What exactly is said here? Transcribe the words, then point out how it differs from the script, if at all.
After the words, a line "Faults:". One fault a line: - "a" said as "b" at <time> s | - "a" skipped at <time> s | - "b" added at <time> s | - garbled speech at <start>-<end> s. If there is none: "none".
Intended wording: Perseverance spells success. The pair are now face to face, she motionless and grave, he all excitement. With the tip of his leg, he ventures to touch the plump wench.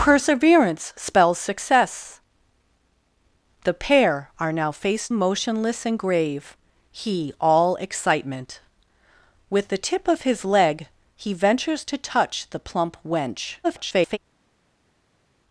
Perseverance spells success. The pair are now face motionless and grave, he all excitement. With the tip of his leg, he ventures to touch the plump wench. [garbled]
Faults:
- "to face she" skipped at 5.1 s
- garbled speech at 13.6-14.2 s